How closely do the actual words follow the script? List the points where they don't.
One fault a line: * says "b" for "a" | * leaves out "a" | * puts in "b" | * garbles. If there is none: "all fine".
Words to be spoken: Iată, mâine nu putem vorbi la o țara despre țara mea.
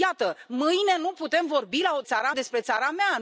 all fine